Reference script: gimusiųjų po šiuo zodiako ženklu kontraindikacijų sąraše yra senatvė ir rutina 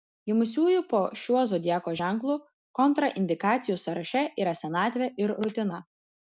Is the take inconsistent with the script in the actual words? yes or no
no